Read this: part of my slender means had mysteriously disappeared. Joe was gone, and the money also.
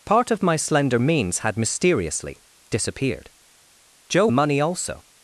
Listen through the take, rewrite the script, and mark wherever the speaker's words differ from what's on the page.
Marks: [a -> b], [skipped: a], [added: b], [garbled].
part of my slender means had mysteriously disappeared. Joe [skipped: was gone, and] the money also.